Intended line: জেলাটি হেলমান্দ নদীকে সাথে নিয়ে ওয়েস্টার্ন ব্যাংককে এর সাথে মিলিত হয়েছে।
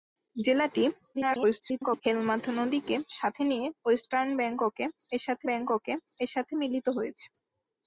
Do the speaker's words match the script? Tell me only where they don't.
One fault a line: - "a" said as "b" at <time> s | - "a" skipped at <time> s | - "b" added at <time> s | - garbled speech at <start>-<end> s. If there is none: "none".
- garbled speech at 1.1-2.0 s
- "ব্যাংককে এর সাথে" added at 5.5 s